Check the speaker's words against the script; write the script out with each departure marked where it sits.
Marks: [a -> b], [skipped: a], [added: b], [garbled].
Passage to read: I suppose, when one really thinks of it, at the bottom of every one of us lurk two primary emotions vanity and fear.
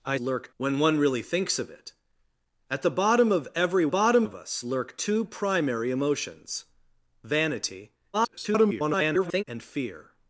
I [suppose, -> lurk] when one really thinks of it, at the bottom of every [one -> bottom] of us lurk two primary emotions vanity [garbled] and fear.